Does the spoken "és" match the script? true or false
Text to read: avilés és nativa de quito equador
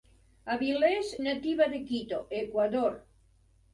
false